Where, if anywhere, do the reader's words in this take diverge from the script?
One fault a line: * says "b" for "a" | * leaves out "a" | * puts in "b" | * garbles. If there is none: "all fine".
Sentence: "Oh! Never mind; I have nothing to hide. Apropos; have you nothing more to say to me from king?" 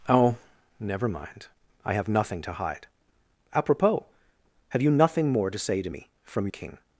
all fine